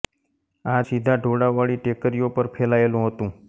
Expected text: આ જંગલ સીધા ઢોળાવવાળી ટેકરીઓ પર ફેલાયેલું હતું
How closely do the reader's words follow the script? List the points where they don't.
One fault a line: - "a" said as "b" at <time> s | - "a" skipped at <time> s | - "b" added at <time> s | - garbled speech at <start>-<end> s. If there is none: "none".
- "જંગલ" skipped at 0.8 s